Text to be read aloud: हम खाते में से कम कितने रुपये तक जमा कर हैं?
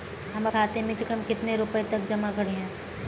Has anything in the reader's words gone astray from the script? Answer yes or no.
no